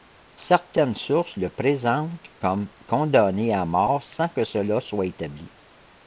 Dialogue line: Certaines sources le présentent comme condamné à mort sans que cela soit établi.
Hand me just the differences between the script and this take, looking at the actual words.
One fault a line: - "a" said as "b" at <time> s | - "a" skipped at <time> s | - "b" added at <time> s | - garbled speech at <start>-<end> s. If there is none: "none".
none